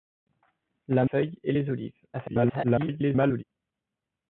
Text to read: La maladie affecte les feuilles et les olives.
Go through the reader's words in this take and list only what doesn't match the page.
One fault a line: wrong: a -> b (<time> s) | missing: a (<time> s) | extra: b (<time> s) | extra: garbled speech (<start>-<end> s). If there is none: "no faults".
missing: maladie affecte les (1.1 s)
extra: garbled speech (2.1-3.4 s)